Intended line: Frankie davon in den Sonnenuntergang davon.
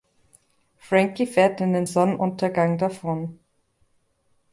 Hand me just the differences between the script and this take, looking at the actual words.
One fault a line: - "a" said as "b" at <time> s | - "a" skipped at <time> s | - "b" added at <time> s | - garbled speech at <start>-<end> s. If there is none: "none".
- "davon" said as "fährt" at 1.3 s